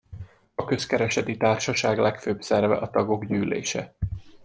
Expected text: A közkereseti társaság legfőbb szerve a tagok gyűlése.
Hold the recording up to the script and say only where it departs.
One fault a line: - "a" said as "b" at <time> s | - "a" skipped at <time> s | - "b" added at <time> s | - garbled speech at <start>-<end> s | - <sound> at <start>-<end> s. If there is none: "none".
none